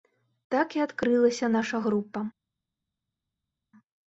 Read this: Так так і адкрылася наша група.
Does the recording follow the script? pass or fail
fail